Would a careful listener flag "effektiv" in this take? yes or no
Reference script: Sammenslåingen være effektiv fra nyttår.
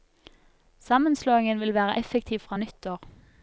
no